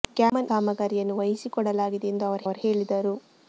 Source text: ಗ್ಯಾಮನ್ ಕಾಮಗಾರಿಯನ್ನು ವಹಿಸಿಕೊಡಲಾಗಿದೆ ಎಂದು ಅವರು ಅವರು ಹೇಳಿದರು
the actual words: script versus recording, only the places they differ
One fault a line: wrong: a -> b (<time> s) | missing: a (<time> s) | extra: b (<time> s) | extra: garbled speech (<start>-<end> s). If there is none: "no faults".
no faults